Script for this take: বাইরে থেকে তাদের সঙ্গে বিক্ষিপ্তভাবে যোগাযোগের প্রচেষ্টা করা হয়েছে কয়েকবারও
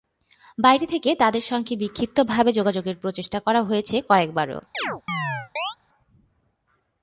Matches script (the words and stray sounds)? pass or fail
fail